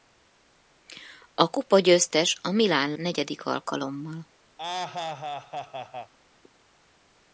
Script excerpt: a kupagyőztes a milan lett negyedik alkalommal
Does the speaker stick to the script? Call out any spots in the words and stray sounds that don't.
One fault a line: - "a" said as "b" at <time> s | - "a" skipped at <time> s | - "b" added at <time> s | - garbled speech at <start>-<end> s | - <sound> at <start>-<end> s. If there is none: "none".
- "lett" skipped at 2.9 s
- laugh at 4.6-6.1 s